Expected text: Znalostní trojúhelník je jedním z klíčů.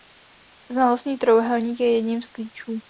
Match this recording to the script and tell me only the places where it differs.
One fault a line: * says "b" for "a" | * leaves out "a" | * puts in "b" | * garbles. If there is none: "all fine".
all fine